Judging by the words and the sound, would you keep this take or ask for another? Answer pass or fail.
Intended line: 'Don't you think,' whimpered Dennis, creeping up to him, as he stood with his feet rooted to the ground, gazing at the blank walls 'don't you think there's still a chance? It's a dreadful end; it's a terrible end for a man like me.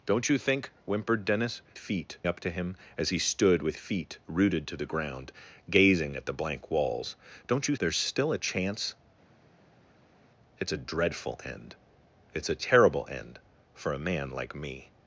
fail